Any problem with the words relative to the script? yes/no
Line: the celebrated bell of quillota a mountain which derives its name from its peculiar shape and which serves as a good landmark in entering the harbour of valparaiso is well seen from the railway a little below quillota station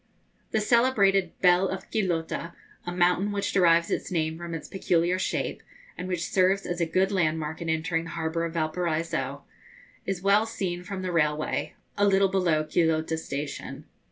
no